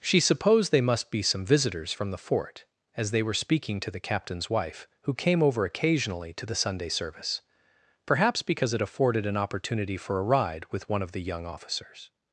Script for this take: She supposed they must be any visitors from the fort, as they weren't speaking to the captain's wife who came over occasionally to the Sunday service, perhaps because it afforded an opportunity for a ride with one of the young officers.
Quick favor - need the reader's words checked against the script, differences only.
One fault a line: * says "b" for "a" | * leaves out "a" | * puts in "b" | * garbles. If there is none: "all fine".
* says "some" for "any"
* says "were" for "weren't"